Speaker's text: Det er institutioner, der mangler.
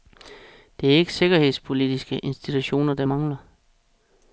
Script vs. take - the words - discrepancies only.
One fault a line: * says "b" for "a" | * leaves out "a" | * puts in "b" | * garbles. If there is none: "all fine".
* puts in "ikke sikkerhedspolitiske"